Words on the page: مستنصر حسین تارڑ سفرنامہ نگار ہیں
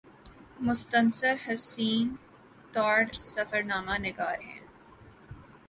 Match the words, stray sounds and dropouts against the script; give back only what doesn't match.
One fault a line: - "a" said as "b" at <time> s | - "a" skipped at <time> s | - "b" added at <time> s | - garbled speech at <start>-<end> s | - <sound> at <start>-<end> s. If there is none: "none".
none